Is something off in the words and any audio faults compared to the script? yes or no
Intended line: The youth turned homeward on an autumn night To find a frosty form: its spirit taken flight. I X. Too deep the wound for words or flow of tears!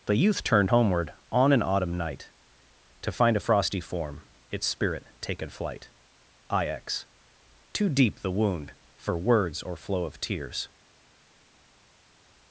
no